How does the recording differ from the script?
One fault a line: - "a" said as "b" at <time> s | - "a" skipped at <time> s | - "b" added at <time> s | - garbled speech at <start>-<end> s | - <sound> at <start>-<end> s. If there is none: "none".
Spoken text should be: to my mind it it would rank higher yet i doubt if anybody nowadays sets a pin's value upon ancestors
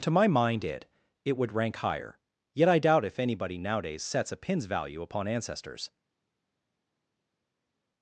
none